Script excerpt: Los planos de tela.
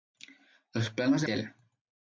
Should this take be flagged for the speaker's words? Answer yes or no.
no